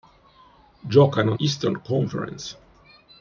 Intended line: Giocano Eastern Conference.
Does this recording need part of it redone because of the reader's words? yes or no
no